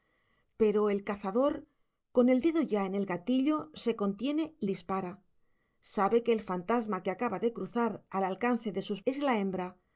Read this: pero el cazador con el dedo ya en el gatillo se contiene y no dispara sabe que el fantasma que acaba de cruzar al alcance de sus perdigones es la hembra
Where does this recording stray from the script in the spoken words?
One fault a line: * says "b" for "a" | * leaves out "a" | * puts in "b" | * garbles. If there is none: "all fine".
* leaves out "no"
* leaves out "perdigones"